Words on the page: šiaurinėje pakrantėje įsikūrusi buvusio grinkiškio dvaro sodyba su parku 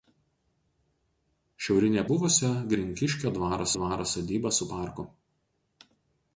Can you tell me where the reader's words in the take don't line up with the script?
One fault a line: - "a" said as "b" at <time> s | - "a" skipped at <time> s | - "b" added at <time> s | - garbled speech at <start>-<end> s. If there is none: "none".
- "pakrantėje įsikūrusi" skipped at 2.0 s
- "dvaro" added at 3.8 s